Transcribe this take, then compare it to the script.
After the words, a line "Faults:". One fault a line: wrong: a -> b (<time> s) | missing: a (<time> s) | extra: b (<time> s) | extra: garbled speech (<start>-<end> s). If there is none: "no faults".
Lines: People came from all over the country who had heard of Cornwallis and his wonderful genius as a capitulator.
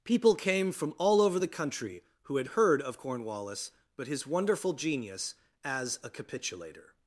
People came from all over the country who had heard of Cornwallis but his wonderful genius as a capitulator.
Faults:
wrong: and -> but (4.0 s)